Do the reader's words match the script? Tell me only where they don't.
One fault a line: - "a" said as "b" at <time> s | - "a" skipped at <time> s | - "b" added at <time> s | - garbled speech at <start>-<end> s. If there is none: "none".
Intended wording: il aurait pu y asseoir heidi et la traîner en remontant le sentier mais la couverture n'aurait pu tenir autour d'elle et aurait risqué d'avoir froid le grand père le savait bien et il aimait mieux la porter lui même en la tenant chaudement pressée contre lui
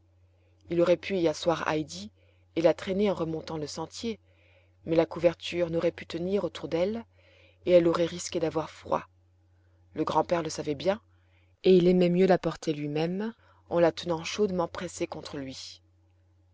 - "elle" added at 7.7 s